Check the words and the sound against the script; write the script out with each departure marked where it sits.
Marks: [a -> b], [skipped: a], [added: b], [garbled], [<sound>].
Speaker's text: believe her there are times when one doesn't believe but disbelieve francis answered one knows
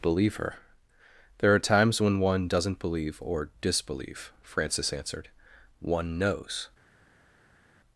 believe her there are times when one doesn't believe [but -> or] disbelieve francis answered one knows